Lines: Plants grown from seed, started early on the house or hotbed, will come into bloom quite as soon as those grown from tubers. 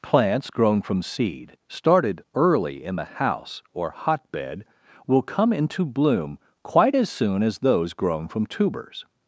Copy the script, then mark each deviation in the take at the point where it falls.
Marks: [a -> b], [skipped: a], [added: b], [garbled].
Plants grown from seed, started early [on -> in] the house or hotbed, will come into bloom quite as soon as those grown from tubers.